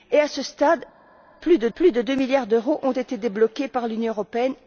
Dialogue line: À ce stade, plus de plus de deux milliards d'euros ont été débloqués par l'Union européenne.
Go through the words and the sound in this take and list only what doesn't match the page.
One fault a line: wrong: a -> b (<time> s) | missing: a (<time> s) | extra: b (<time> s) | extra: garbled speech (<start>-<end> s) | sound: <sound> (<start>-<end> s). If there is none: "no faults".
no faults